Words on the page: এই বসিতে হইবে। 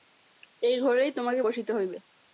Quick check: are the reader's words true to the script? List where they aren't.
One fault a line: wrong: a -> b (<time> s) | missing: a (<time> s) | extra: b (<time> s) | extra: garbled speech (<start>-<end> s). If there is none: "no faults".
extra: ঘরেই তোমাকে (0.8 s)